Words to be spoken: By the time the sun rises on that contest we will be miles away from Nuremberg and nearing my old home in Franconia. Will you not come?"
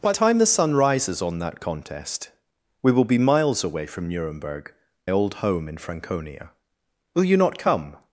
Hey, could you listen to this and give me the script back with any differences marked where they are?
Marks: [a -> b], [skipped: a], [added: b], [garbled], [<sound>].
By [skipped: the] time the sun rises on that contest we will be miles away from Nuremberg [skipped: and nearing my] old home in Franconia. Will you not come?"